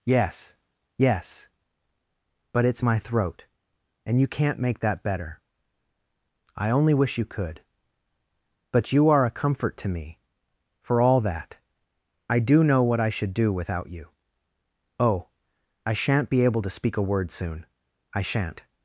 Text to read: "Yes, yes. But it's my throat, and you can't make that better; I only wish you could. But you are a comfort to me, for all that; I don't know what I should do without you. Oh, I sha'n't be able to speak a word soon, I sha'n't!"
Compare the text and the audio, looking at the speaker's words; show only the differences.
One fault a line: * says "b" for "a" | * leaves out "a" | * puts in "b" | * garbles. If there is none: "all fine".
* says "do" for "don't"